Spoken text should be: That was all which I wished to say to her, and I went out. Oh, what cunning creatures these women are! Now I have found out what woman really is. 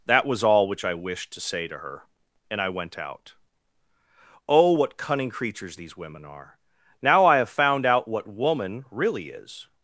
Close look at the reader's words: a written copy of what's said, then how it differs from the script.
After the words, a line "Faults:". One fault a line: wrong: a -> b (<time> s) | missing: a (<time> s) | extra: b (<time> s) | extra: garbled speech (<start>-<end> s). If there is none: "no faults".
That was all which I wished to say to her, and I went out. Oh, what cunning creatures these women are! Now I have found out what woman really is.
Faults:
no faults